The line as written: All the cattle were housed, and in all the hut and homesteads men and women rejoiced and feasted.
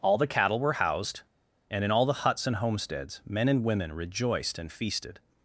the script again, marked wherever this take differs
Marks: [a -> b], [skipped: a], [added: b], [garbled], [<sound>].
All the cattle were housed, and in all the [hut -> huts] and homesteads men and women rejoiced and feasted.